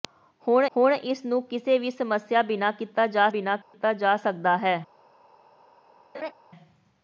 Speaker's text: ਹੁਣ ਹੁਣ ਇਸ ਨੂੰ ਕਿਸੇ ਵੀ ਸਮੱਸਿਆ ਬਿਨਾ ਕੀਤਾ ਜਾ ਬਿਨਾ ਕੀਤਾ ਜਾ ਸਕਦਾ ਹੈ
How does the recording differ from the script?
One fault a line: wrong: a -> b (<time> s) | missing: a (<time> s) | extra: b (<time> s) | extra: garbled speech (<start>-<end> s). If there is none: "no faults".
no faults